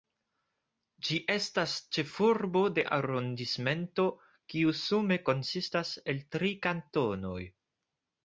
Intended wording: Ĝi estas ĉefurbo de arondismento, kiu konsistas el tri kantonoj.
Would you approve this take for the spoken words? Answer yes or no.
no